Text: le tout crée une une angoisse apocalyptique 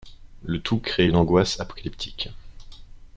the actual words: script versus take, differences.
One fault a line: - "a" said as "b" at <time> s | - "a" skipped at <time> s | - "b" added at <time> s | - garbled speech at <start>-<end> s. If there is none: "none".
- "une" skipped at 1.2 s